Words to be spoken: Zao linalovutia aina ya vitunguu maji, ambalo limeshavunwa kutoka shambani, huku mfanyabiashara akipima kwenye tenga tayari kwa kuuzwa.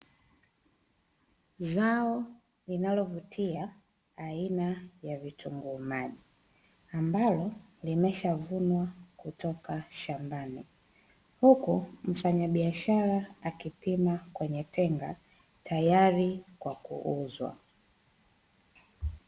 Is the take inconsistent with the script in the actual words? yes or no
no